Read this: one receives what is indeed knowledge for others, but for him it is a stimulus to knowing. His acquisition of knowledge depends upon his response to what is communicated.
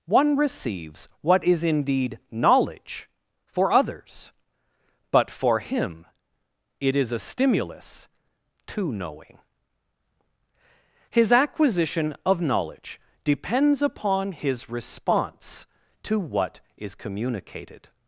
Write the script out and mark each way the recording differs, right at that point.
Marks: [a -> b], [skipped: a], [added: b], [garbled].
one receives what is indeed knowledge for others, but for him it is a stimulus to knowing. His acquisition of knowledge depends upon his response to what is communicated.